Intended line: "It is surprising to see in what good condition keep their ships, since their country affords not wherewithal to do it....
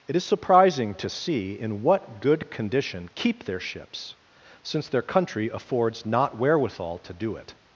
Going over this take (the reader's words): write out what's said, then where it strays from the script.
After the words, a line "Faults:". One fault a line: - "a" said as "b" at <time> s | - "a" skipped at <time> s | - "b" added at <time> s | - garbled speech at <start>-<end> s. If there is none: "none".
"It is surprising to see in what good condition keep their ships, since their country affords not wherewithal to do it....
Faults:
none